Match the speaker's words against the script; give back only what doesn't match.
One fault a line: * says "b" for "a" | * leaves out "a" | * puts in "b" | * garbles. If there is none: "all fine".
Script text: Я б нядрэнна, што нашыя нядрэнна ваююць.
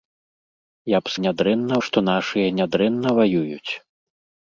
all fine